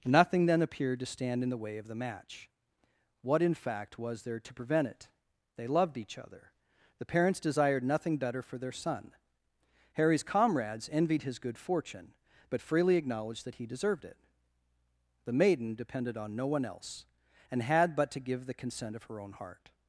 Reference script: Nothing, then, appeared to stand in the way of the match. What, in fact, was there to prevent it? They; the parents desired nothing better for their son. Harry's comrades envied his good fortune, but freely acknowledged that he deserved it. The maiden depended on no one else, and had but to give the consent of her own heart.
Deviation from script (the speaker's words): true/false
true